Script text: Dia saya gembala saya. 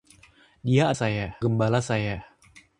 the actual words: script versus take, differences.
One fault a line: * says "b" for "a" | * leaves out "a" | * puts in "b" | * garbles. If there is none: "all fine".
all fine